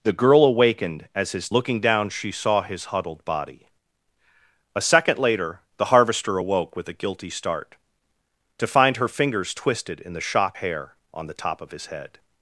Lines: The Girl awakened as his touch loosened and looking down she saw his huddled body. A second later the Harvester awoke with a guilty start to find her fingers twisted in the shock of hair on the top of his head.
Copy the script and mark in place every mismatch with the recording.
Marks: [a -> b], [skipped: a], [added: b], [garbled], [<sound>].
The Girl awakened as his [skipped: touch loosened and] looking down she saw his huddled body. A second later the Harvester awoke with a guilty start to find her fingers twisted in the shock [skipped: of] hair on the top of his head.